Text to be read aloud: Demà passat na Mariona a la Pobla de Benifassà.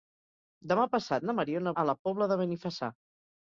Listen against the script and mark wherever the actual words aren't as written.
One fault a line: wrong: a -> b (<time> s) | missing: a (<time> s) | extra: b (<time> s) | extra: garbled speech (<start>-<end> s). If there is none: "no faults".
no faults